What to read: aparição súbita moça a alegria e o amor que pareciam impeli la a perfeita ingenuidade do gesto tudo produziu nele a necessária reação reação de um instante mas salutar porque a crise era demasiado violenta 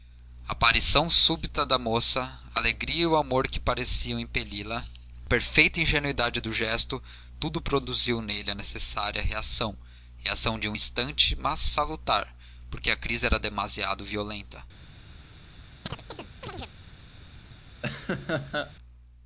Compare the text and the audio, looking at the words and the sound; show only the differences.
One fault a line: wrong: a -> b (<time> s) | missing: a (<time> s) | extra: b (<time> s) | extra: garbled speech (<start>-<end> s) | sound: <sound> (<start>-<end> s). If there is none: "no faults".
extra: da (1.6 s)
sound: chirp (15.9-16.7 s)
sound: laugh (17.8-18.7 s)